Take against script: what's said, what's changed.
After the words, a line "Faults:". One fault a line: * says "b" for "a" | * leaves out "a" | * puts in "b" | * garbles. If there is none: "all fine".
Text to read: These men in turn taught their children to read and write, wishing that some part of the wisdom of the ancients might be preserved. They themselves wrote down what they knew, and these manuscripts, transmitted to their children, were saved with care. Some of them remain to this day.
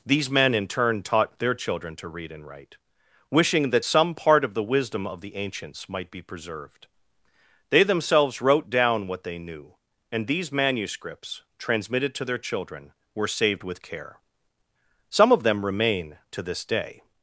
These men in turn taught their children to read and write, wishing that some part of the wisdom of the ancients might be preserved. They themselves wrote down what they knew, and these manuscripts, transmitted to their children, were saved with care. Some of them remain to this day.
Faults:
all fine